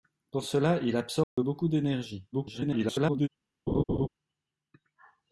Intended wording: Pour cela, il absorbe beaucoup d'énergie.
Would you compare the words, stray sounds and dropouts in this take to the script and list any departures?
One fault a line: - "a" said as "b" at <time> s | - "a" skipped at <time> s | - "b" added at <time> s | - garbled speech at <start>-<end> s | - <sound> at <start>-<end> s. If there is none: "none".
- dropout at 1.2-1.4 s
- garbled speech at 2.3-3.3 s
- laugh at 3.7-4.1 s